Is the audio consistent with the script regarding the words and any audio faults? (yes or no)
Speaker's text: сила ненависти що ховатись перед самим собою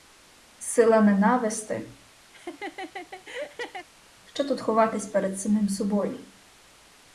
no